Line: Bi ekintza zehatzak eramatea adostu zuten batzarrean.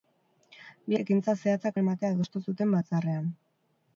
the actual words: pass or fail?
pass